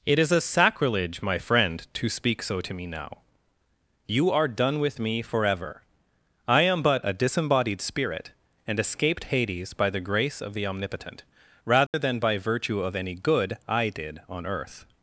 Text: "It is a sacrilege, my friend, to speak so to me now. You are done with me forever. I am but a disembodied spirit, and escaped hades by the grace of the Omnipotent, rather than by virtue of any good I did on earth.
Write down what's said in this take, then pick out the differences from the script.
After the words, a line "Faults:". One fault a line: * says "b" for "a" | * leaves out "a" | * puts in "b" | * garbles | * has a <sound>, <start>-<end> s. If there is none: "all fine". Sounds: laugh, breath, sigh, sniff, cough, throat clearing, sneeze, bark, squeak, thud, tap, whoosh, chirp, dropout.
"It is a sacrilege, my friend, to speak so to me now. You are done with me forever. I am but a disembodied spirit, and escaped hades by the grace of the Omnipotent, rather than by virtue of any good I did on earth.
Faults:
* has a dropout, 11.9-11.9 s